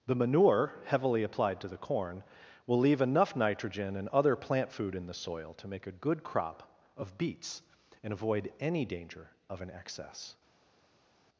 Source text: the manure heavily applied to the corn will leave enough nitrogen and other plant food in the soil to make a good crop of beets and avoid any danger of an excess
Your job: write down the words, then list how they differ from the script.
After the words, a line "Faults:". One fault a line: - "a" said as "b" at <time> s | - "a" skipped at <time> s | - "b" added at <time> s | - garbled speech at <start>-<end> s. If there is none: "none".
the manure heavily applied to the corn will leave enough nitrogen and other plant food in the soil to make a good crop of beets and avoid any danger of an excess
Faults:
none